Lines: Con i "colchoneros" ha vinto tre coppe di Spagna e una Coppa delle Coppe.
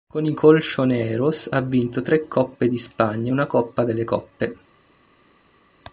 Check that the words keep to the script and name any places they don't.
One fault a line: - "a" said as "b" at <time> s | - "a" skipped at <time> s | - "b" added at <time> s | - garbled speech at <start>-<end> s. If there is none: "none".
none